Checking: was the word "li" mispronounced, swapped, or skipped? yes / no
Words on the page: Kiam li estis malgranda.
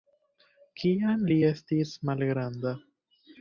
no